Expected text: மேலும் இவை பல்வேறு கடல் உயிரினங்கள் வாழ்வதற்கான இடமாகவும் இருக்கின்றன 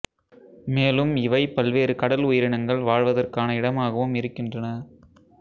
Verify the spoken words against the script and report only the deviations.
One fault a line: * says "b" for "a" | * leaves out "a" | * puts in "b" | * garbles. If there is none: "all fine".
all fine